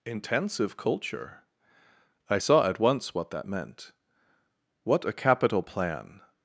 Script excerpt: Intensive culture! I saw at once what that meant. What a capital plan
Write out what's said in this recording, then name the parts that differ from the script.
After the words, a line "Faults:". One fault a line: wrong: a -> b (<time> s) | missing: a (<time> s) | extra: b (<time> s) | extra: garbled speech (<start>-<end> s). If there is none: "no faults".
Intensive culture! I saw at once what that meant. What a capital plan
Faults:
no faults